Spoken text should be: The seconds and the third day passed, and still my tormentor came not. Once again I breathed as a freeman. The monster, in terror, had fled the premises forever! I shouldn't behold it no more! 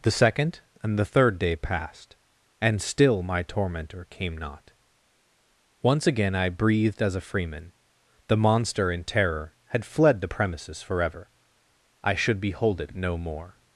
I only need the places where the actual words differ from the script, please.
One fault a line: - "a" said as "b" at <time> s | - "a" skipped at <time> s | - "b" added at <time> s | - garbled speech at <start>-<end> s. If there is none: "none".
- "seconds" said as "second" at 0.1 s
- "shouldn't" said as "should" at 12.1 s